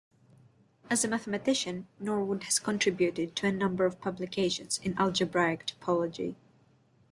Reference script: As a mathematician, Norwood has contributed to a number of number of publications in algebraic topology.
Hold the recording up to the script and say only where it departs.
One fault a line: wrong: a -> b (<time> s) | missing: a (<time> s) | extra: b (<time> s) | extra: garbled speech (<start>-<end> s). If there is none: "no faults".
missing: number of (4.0 s)